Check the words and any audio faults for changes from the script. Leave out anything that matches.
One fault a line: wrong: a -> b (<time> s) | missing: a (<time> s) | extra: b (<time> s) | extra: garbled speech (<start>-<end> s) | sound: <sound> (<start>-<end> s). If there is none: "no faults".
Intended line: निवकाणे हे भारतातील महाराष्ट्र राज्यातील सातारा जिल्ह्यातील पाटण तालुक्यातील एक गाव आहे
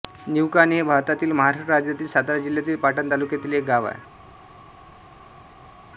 no faults